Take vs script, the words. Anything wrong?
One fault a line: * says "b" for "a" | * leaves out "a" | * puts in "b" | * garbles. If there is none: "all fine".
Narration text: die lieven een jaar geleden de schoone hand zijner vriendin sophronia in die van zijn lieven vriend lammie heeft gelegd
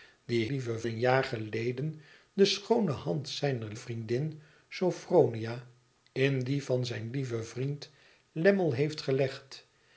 all fine